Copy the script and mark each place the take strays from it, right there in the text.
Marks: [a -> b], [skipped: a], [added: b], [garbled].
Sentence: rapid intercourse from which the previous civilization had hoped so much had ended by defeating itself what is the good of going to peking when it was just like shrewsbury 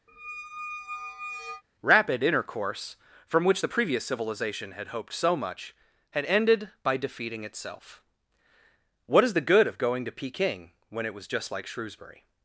rapid intercourse from which the previous civilization had hoped so much had ended by defeating itself what is the good of going to peking when it was just like shrewsbury